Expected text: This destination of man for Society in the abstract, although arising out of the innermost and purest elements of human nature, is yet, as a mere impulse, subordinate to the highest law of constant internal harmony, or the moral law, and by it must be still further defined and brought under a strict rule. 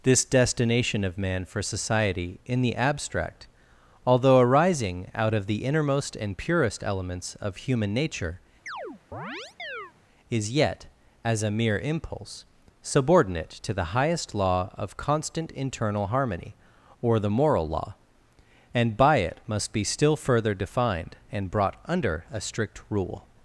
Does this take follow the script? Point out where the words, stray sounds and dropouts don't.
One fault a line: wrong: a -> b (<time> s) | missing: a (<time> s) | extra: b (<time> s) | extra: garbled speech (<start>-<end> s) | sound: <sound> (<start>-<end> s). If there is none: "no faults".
sound: chirp (8.7-9.9 s)